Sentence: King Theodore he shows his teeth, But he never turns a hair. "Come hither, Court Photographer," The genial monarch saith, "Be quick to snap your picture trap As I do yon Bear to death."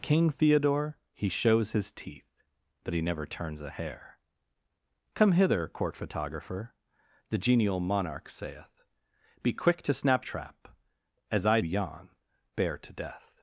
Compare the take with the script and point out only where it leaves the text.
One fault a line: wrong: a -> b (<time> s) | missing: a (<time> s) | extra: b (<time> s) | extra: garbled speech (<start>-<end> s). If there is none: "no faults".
missing: your picture (10.3 s)
missing: do (11.6 s)